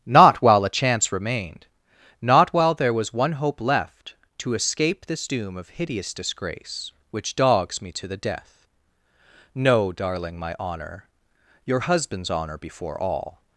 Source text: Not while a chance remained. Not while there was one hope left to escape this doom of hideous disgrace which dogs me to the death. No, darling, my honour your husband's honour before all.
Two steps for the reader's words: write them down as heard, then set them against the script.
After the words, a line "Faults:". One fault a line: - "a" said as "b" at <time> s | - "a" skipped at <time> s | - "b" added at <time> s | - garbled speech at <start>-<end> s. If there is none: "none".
Not while a chance remained. Not while there was one hope left to escape this doom of hideous disgrace which dogs me to the death. No, darling, my honour your husband's honour before all.
Faults:
none